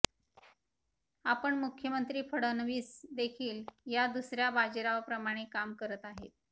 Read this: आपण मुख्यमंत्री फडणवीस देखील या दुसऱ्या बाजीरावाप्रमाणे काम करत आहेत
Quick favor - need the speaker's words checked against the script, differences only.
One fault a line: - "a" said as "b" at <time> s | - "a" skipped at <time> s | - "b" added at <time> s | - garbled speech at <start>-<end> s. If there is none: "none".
none